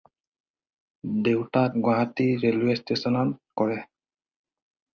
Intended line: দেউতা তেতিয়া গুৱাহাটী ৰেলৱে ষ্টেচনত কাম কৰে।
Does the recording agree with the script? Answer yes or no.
no